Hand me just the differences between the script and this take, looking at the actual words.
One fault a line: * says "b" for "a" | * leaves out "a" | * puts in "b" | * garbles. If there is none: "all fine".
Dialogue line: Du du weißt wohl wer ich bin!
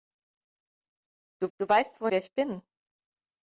all fine